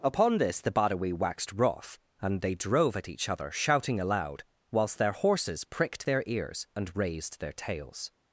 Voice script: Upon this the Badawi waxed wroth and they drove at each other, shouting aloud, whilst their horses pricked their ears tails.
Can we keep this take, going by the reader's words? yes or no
no